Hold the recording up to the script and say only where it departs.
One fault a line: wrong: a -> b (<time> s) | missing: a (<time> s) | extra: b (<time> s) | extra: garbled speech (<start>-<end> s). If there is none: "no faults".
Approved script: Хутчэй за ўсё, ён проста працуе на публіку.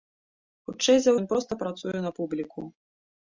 missing: ўсё (1.1 s)